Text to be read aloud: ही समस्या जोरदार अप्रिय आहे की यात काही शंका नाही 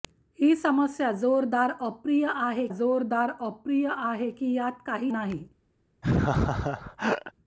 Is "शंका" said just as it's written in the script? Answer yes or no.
no